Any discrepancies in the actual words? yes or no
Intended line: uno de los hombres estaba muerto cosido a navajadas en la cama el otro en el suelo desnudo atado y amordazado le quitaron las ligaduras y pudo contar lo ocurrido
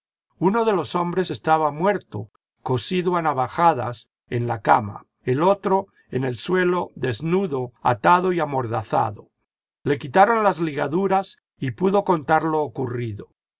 no